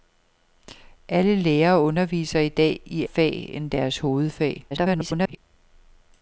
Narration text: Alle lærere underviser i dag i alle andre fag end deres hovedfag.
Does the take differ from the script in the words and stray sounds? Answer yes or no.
yes